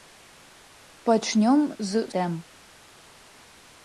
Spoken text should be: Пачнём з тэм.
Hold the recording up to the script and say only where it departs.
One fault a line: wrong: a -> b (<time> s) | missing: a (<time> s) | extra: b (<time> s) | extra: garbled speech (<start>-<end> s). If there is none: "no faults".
no faults